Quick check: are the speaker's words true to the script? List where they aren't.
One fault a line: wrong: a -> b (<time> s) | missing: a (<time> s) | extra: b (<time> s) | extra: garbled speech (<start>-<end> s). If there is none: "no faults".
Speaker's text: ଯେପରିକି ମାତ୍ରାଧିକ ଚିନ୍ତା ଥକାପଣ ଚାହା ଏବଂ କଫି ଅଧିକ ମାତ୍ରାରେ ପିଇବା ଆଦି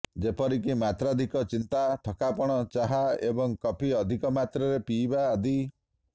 no faults